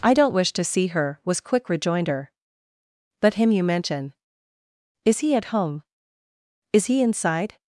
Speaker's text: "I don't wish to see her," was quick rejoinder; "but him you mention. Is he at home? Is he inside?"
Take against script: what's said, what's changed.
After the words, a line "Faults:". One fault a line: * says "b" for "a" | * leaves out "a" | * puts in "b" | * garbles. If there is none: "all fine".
"I don't wish to see her," was quick rejoinder; "but him you mention. Is he at home? Is he inside?"
Faults:
all fine